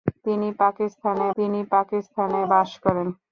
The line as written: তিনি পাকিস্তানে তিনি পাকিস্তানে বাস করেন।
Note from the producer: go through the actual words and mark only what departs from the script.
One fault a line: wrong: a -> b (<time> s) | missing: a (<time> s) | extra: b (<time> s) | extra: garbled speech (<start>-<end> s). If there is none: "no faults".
no faults